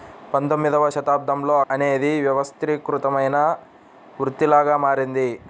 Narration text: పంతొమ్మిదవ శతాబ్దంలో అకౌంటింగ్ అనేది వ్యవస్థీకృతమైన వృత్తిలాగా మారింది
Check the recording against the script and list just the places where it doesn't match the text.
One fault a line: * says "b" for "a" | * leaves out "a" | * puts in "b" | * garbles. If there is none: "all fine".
* leaves out "అకౌంటింగ్"